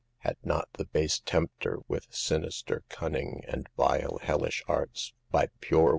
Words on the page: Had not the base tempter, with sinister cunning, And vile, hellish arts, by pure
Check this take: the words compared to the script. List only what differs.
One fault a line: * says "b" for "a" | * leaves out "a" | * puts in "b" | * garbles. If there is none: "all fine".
all fine